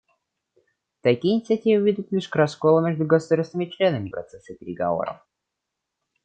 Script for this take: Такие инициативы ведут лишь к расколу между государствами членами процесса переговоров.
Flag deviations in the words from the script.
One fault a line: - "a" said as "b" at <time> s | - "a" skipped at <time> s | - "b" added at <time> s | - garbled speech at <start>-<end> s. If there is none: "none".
none